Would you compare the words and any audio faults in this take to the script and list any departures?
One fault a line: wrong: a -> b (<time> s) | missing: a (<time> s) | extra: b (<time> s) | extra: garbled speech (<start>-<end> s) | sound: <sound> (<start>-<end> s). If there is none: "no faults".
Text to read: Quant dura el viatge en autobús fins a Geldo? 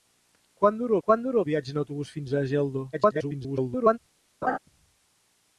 extra: quant dura (1.1 s)
extra: garbled speech (2.9-4.0 s)
sound: laugh (4.4-4.6 s)